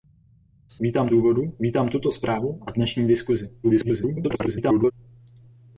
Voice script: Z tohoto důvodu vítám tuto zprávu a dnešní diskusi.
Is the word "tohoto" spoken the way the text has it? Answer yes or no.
no